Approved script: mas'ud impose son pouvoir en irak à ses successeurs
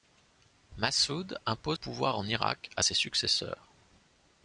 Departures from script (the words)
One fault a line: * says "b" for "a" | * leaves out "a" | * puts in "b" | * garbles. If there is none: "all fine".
* leaves out "son"